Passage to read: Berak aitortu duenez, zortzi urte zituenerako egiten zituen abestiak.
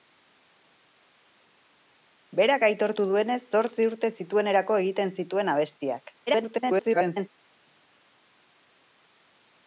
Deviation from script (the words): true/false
true